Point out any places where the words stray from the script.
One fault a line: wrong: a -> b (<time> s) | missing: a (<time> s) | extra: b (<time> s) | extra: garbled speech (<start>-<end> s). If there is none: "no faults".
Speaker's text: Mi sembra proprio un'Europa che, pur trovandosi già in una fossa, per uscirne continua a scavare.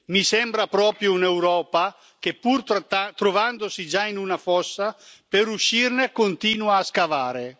no faults